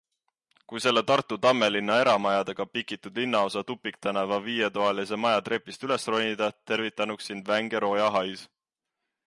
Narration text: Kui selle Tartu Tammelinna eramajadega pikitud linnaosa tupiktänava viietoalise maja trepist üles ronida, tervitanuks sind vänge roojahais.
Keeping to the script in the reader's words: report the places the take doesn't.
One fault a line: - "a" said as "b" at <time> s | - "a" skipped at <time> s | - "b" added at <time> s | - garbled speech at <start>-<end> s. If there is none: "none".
none